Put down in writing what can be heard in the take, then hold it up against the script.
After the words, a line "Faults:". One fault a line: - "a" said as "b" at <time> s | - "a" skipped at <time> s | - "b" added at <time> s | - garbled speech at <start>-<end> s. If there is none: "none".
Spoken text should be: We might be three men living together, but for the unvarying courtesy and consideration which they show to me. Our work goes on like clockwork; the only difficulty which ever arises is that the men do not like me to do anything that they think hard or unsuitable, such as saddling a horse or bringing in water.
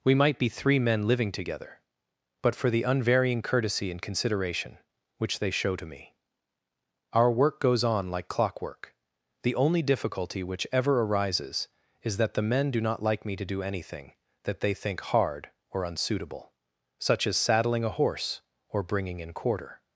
We might be three men living together, but for the unvarying courtesy and consideration which they show to me. Our work goes on like clockwork; the only difficulty which ever arises is that the men do not like me to do anything that they think hard or unsuitable, such as saddling a horse or bringing in quarter.
Faults:
- "water" said as "quarter" at 19.3 s